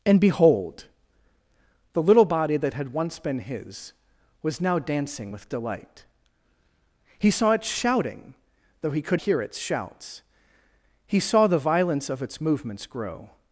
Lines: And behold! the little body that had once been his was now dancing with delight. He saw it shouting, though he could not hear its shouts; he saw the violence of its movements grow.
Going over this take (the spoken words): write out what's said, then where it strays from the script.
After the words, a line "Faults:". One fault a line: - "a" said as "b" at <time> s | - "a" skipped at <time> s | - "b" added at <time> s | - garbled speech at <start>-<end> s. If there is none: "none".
And behold! the little body that had once been his was now dancing with delight. He saw it shouting, though he could hear its shouts; he saw the violence of its movements grow.
Faults:
- "not" skipped at 9.2 s